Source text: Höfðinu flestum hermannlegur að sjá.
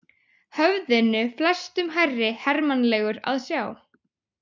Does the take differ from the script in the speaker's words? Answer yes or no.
yes